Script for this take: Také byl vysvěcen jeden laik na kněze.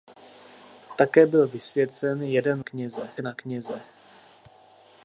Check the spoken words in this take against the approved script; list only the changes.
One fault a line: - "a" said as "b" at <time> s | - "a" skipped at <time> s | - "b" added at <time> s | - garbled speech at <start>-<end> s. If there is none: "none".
- "laik" said as "kněze" at 2.6 s